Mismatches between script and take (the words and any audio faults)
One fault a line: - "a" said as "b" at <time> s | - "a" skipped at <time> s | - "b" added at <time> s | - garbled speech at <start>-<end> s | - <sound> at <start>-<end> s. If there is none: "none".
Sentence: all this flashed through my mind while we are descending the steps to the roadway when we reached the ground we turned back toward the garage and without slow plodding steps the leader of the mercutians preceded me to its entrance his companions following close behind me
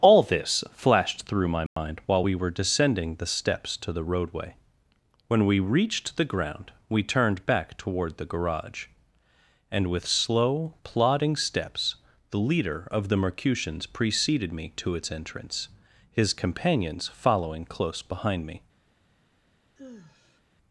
- dropout at 1.7-1.8 s
- "are" said as "were" at 2.3 s
- "without" said as "with" at 9.9 s
- sigh at 19.8-20.4 s